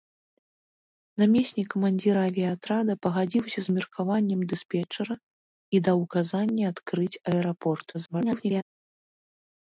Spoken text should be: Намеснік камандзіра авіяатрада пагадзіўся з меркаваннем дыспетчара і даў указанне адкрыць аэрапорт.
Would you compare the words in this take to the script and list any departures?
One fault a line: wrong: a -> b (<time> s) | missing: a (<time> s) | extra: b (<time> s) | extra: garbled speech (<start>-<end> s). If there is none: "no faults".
extra: garbled speech (7.9-8.6 s)